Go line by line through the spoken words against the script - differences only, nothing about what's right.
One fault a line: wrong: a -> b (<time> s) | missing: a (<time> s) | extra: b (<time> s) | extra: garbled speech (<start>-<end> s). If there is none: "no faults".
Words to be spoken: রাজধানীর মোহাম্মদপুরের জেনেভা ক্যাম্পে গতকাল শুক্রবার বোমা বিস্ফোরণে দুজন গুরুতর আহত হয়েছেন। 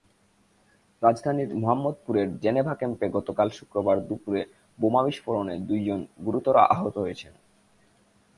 extra: দুপুরে (4.1 s)